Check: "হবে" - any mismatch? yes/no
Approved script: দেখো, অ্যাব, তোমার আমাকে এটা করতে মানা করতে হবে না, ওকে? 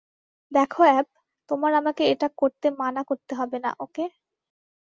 no